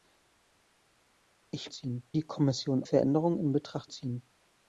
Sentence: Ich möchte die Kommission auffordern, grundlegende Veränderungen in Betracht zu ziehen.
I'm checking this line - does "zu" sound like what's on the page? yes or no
no